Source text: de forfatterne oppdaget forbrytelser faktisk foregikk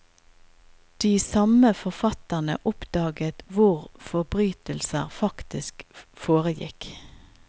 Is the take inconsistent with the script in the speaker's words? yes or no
yes